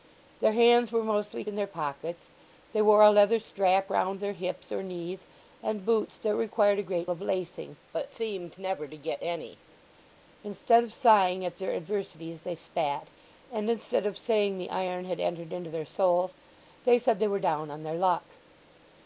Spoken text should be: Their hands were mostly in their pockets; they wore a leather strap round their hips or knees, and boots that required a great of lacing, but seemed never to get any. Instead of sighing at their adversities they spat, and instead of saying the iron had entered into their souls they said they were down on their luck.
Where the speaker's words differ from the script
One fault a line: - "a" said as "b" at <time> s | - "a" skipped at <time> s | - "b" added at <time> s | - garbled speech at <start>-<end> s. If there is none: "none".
none